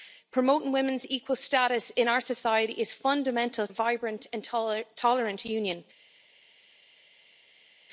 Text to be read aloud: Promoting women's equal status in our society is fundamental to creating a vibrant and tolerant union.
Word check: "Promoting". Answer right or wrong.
right